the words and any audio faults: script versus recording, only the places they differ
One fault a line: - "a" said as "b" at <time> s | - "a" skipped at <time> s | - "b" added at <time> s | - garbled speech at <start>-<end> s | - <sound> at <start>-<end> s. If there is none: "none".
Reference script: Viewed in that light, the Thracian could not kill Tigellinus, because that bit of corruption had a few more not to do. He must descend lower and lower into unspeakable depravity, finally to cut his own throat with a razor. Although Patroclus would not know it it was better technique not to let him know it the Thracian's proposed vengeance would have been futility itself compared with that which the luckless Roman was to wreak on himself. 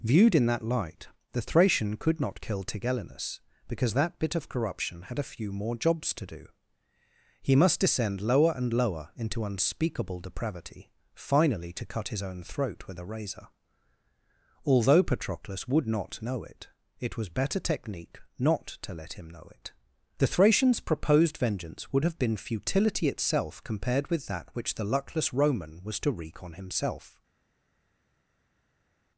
- "not" said as "jobs" at 5.8 s